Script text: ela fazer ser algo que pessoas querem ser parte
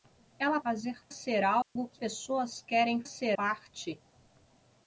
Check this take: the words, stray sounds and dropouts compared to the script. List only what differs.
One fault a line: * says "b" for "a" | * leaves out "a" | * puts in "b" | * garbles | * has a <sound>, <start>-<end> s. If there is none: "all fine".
* has a dropout, 1.6-1.8 s